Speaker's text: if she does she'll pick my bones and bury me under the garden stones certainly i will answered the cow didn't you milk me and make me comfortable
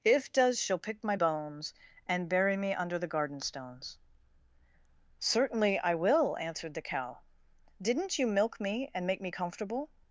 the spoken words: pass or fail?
fail